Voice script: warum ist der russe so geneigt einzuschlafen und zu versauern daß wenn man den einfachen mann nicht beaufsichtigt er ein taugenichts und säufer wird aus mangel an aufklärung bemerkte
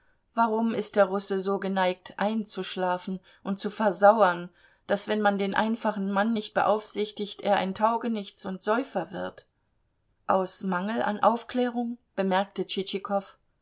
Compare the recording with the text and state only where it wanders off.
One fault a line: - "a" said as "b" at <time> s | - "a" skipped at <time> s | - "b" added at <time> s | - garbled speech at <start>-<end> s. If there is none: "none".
none